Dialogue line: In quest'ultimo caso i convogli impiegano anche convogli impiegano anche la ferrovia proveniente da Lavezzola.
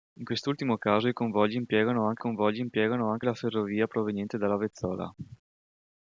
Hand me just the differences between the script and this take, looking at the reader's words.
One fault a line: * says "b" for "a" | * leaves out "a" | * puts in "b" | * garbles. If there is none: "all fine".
all fine